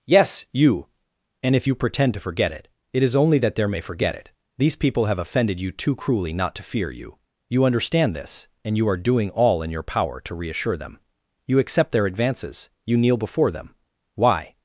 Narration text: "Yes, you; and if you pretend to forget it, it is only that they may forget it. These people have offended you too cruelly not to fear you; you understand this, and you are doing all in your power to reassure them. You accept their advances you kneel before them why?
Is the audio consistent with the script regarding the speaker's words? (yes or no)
no